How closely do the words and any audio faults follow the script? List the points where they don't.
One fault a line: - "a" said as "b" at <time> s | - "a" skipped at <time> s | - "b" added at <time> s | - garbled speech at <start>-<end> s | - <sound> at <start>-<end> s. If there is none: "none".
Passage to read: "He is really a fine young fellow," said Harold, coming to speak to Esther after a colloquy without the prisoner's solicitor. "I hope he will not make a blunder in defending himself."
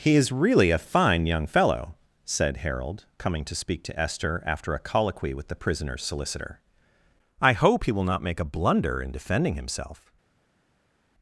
- "without" said as "with" at 5.3 s